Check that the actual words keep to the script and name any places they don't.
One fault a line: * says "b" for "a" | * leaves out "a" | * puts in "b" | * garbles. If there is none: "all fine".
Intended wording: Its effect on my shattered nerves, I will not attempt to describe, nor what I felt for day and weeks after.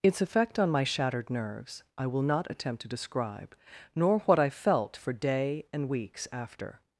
all fine